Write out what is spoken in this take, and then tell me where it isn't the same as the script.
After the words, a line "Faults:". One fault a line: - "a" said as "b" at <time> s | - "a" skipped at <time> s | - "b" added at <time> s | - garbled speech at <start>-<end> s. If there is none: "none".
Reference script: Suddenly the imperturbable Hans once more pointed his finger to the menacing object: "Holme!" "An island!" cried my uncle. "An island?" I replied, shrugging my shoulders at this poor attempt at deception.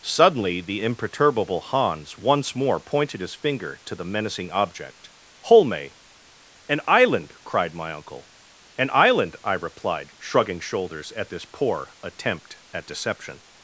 Suddenly the imperturbable Hans once more pointed his finger to the menacing object: "Holme!" "An island!" cried my uncle. "An island?" I replied, shrugging shoulders at this poor attempt at deception.
Faults:
- "my" skipped at 10.6 s